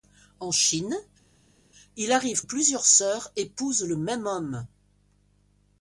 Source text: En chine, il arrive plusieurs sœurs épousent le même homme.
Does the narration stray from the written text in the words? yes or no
no